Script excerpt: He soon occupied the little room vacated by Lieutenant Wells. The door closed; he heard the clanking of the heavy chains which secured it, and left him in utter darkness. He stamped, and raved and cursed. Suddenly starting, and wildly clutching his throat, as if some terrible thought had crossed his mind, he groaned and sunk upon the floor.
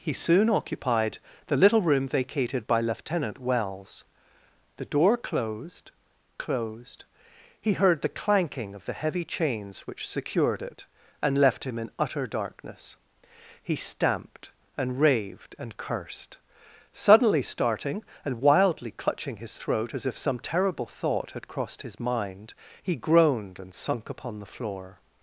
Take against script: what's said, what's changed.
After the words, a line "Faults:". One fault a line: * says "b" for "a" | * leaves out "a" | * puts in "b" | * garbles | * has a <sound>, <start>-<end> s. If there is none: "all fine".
He soon occupied the little room vacated by Lieutenant Wells. The door closed closed; he heard the clanking of the heavy chains which secured it, and left him in utter darkness. He stamped, and raved and cursed. Suddenly starting, and wildly clutching his throat, as if some terrible thought had crossed his mind, he groaned and sunk upon the floor.
Faults:
* puts in "closed"